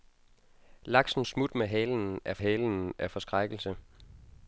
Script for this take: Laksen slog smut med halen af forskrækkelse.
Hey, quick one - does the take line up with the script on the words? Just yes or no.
no